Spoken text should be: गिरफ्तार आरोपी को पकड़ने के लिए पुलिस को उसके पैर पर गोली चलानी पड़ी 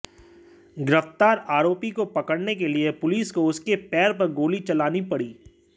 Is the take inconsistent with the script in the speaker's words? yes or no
no